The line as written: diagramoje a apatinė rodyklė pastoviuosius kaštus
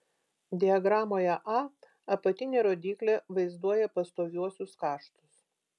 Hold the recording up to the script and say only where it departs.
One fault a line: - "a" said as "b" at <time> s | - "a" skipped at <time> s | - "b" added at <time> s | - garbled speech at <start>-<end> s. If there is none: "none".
- "vaizduoja" added at 3.4 s